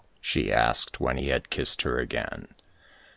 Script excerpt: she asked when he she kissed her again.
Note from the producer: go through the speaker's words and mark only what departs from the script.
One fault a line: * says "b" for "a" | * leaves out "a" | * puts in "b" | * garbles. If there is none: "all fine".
* says "had" for "she"